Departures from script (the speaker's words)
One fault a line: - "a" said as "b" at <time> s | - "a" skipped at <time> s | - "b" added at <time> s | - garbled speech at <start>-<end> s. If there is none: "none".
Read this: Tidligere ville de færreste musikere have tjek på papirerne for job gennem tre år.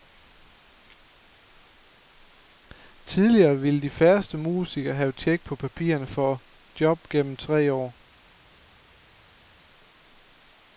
none